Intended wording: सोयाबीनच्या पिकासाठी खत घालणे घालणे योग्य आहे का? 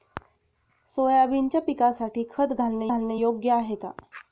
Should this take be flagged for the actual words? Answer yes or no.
no